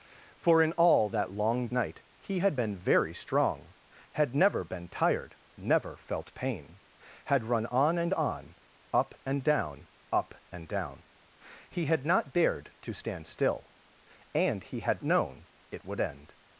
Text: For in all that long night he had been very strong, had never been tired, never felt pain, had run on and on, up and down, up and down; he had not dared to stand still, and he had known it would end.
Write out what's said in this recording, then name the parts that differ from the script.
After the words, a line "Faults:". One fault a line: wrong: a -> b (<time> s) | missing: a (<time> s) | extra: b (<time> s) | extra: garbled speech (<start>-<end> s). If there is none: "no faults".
For in all that long night he had been very strong, had never been tired, never felt pain, had run on and on, up and down, up and down; he had not dared to stand still, and he had known it would end.
Faults:
no faults